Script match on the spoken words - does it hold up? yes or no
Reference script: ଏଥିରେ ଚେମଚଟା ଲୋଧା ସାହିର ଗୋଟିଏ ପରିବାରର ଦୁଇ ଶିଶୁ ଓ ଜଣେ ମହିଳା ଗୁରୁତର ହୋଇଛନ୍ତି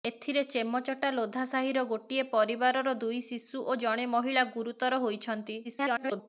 no